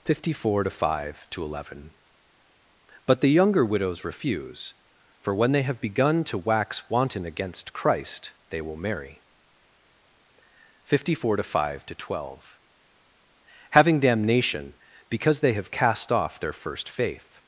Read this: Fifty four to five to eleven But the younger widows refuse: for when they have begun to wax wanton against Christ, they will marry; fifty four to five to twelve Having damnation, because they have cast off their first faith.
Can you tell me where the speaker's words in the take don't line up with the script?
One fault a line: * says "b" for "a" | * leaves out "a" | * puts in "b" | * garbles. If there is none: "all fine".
all fine